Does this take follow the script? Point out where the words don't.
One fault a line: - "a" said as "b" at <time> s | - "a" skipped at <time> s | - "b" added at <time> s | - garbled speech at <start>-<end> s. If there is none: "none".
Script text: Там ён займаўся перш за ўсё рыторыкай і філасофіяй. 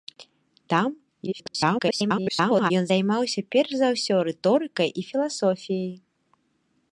- garbled speech at 1.3-2.7 s